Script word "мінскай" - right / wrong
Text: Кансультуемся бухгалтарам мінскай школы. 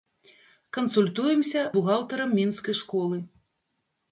right